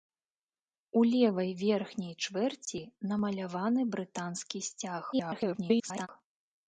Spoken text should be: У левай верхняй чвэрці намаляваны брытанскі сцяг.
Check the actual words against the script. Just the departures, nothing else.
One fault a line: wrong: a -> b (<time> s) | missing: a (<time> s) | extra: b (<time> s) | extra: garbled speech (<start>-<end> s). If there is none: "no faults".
extra: garbled speech (5.1-6.1 s)